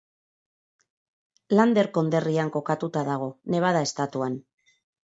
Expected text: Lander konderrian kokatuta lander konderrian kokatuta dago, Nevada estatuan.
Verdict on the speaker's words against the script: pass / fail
fail